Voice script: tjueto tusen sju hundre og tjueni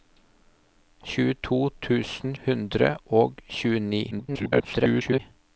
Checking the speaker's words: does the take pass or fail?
fail